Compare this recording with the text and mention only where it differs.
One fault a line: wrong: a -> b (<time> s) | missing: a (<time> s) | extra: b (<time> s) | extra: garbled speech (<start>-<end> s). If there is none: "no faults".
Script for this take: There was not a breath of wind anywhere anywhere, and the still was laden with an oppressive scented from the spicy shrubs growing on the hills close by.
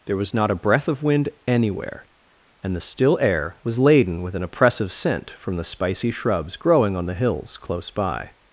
missing: anywhere (2.1 s)
extra: air (3.2 s)
wrong: scented -> scent (4.9 s)